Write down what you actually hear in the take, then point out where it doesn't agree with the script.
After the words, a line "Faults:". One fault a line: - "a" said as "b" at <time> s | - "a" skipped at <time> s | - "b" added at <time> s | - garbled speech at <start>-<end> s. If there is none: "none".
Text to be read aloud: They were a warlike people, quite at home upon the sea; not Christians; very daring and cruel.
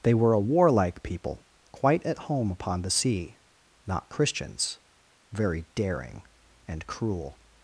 They were a warlike people, quite at home upon the sea; not Christians; very daring and cruel.
Faults:
none